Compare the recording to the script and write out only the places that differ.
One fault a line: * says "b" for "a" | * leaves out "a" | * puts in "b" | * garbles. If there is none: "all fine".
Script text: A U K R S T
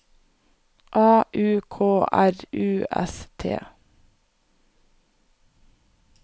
* puts in "U"